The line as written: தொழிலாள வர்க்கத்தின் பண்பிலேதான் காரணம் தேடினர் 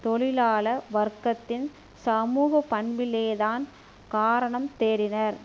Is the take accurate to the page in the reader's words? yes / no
no